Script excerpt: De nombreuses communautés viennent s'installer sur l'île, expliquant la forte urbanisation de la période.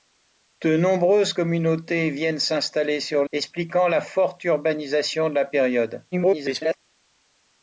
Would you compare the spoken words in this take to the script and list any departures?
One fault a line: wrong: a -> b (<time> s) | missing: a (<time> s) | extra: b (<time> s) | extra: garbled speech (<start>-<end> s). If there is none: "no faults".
missing: l'île (3.2 s)
extra: garbled speech (6.1-6.8 s)